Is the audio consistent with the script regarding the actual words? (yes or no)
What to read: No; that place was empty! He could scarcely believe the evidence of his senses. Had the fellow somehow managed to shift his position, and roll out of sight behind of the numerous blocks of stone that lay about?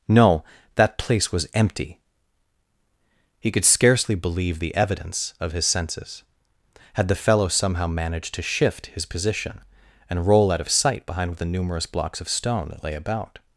yes